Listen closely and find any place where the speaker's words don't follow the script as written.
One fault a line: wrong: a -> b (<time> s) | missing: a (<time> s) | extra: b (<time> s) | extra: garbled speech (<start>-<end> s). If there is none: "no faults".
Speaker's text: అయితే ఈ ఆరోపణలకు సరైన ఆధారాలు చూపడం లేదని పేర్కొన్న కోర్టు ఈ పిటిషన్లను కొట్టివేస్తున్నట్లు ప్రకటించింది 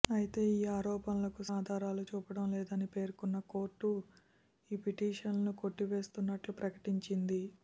missing: సరైన (1.4 s)